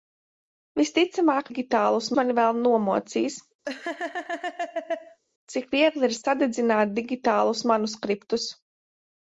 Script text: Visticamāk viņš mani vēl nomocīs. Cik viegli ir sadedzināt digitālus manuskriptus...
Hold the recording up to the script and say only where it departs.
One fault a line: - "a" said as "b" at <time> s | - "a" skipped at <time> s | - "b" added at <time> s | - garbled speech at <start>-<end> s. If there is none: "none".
- "viņš" said as "digitālus" at 1.5 s